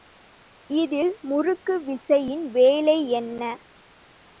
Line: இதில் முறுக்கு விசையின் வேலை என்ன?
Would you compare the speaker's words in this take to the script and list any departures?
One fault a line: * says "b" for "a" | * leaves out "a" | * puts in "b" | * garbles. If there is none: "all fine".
all fine